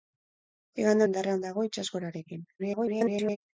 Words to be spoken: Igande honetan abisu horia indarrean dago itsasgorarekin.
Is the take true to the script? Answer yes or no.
no